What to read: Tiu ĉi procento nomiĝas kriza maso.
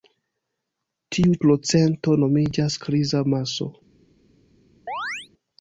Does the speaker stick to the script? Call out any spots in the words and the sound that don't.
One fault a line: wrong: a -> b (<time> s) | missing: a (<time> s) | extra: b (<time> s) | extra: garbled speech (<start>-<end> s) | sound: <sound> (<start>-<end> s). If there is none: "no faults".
missing: ĉi (1.4 s)
sound: chirp (4.9-5.3 s)